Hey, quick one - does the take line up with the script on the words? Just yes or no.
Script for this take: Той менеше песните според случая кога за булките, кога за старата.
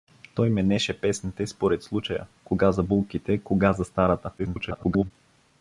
no